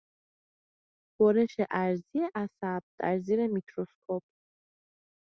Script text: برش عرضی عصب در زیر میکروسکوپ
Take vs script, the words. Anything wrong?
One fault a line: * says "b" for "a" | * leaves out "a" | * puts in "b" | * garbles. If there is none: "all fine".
all fine